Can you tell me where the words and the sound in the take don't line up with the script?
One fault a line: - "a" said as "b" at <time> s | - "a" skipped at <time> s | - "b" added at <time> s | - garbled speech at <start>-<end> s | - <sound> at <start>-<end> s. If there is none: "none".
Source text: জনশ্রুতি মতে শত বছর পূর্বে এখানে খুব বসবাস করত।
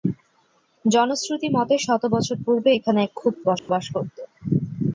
- dropout at 3.6-3.7 s